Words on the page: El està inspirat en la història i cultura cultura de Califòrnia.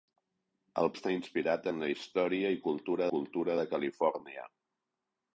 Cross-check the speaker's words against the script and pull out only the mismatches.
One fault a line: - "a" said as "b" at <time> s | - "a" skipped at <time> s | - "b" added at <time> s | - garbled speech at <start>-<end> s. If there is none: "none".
none